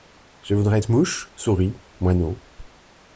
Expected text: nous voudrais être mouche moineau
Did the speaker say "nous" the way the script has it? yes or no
no